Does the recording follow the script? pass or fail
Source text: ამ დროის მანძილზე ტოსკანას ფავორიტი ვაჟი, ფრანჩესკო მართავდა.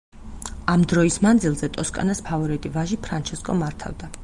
pass